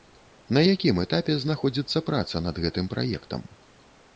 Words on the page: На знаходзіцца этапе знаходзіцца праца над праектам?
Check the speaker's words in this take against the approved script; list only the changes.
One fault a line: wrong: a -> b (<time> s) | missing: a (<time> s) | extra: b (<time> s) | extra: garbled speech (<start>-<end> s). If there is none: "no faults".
wrong: знаходзіцца -> якім (0.7 s)
extra: гэтым (2.7 s)